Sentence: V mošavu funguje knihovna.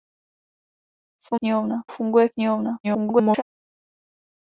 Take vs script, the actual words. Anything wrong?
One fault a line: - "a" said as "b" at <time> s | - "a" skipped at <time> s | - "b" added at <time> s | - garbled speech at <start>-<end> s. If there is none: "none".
- "mošavu" said as "knihovna" at 1.3 s
- garbled speech at 2.8-3.4 s